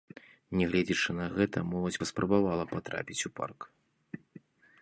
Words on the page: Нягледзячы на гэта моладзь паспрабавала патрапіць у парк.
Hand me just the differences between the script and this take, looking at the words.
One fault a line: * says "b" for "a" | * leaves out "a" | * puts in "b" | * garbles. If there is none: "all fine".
all fine